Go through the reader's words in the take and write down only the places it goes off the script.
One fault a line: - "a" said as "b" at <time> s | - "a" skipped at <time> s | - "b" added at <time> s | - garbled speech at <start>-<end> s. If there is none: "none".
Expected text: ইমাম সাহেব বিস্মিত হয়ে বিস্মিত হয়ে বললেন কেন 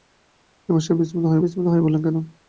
none